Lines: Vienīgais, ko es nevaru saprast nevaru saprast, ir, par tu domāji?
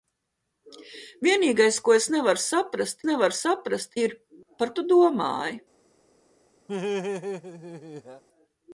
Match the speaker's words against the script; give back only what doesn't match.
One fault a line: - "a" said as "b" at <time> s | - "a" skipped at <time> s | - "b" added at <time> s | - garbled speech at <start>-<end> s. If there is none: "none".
none